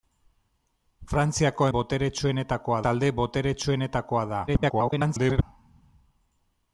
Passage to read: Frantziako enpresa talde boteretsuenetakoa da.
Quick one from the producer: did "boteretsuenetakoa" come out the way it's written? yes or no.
yes